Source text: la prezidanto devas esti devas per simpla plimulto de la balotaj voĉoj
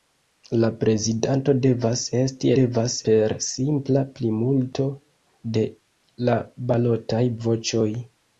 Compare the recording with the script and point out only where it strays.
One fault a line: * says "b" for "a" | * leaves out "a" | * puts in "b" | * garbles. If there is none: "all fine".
all fine